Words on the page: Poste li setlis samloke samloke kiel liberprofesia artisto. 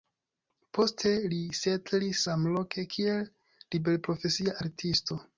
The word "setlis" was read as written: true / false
true